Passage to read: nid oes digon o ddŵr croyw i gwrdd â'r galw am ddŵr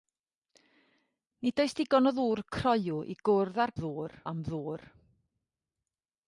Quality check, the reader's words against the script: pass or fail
fail